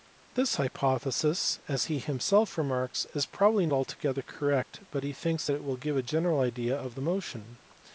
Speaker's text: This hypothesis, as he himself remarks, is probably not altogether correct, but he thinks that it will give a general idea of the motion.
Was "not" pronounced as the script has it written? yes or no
no